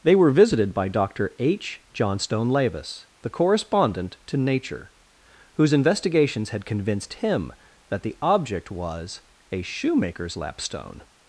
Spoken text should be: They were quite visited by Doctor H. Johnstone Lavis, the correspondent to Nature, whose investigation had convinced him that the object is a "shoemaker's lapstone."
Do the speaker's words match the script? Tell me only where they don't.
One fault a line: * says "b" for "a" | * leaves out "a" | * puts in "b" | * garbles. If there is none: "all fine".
* leaves out "quite"
* says "investigations" for "investigation"
* says "was" for "is"